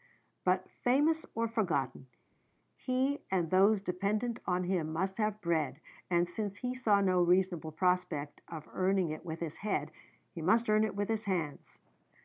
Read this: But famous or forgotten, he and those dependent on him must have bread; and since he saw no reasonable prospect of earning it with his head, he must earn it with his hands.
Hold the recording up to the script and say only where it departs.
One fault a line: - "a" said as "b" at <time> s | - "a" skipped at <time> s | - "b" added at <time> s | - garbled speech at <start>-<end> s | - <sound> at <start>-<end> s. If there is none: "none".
none